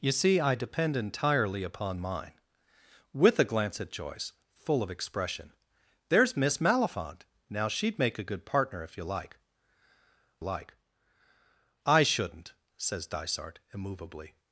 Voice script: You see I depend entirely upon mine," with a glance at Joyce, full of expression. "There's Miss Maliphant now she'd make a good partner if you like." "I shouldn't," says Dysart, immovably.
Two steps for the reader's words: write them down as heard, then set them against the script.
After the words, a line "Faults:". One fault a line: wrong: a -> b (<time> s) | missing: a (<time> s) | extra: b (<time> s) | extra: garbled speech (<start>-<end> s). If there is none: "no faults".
You see I depend entirely upon mine," with a glance at Joyce, full of expression. "There's Miss Maliphant now she'd make a good partner if you like like." "I shouldn't," says Dysart, immovably.
Faults:
extra: like (10.4 s)